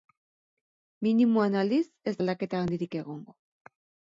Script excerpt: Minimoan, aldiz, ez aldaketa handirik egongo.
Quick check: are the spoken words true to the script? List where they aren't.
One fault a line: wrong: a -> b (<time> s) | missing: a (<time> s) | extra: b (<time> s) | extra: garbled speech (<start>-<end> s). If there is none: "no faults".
no faults